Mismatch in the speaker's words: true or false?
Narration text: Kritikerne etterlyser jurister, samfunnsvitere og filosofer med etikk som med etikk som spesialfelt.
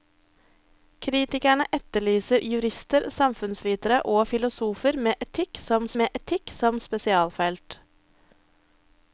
false